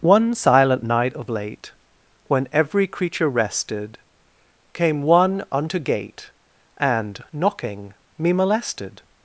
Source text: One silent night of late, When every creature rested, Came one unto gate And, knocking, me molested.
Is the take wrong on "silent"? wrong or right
right